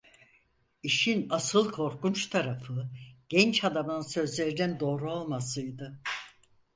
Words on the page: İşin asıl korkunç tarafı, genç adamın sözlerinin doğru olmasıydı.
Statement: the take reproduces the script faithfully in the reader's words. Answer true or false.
true